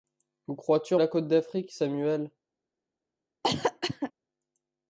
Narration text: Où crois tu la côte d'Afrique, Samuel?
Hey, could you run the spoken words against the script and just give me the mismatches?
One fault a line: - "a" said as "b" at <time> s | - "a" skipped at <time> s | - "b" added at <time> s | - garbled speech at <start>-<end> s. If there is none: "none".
none